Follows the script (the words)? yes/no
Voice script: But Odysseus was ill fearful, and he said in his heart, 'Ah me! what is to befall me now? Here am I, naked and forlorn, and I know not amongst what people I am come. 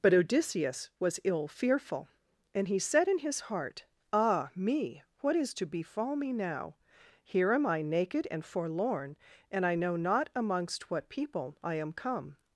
yes